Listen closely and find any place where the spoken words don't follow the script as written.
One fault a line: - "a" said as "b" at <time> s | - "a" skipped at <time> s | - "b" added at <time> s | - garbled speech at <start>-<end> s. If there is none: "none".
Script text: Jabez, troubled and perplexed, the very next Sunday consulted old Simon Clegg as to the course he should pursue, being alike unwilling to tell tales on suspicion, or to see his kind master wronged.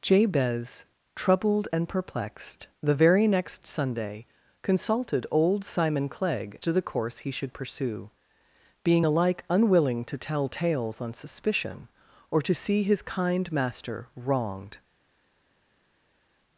- "as" skipped at 6.6 s